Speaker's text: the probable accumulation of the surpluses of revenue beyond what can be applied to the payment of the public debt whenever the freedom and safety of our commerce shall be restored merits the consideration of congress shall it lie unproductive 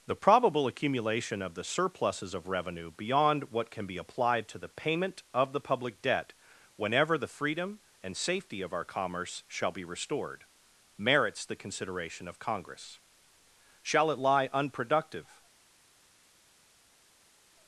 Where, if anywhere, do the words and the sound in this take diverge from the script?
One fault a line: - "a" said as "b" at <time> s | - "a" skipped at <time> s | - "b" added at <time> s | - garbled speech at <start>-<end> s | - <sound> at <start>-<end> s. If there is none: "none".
none